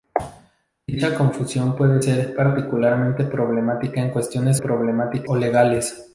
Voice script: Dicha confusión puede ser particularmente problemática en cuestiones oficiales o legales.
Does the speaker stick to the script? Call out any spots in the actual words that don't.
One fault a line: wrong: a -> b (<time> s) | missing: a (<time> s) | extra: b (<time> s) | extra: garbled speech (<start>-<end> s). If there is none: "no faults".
wrong: oficiales -> problemática (4.6 s)